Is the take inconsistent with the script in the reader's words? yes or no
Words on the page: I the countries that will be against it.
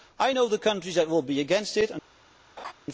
yes